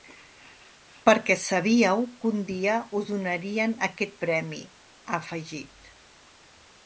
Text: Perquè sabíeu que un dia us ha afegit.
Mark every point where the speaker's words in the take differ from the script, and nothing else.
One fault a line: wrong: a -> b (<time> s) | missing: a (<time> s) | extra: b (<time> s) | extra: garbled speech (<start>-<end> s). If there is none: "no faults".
extra: donarien aquest premi (3.1 s)